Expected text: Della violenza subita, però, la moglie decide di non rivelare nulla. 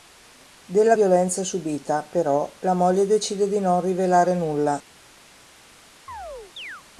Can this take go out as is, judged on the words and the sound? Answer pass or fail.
fail